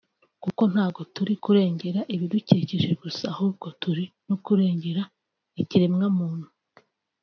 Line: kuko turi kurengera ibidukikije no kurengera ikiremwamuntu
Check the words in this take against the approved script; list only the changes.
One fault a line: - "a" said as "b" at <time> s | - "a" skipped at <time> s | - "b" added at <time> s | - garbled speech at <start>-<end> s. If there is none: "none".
- "ntago" added at 0.7 s
- "gusa ahubwo turi" added at 3.0 s